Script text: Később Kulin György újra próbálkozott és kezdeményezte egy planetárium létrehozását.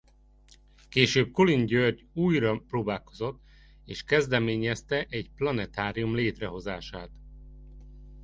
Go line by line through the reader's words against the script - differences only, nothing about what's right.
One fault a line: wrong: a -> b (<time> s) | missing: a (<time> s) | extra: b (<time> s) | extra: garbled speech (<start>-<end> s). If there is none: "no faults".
no faults